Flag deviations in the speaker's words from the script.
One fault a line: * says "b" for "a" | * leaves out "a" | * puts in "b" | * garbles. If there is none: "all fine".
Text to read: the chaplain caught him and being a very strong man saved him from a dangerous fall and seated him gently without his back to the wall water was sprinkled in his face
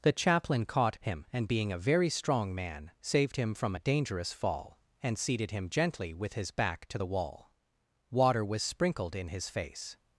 * says "with" for "without"